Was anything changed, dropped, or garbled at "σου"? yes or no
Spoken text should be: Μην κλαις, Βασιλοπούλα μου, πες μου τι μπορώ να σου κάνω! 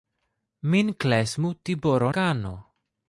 yes